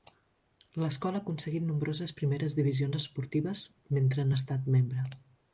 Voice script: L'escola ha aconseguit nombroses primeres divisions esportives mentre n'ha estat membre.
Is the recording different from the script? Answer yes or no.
no